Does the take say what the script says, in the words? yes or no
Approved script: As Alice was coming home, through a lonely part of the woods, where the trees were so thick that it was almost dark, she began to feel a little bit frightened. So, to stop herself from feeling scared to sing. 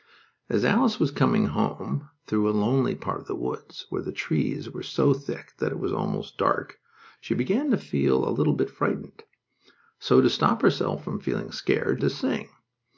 yes